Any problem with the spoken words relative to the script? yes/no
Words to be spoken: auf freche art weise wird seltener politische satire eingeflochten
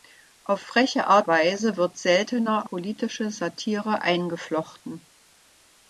no